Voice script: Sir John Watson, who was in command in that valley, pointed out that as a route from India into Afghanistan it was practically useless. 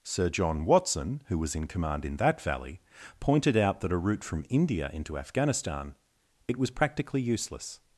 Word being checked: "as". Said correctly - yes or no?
no